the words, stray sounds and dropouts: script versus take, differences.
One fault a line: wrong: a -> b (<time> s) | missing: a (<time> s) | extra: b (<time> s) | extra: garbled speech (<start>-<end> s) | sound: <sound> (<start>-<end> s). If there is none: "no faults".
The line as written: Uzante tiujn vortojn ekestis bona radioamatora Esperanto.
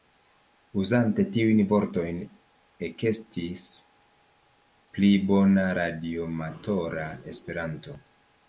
extra: pli (5.0 s)